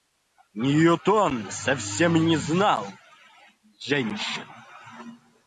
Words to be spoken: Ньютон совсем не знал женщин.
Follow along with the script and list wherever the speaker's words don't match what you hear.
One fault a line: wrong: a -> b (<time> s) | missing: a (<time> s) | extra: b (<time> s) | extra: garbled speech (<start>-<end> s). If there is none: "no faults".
no faults